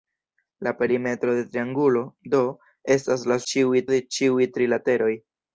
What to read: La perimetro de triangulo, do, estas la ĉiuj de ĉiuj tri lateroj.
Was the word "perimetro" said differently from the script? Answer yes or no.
no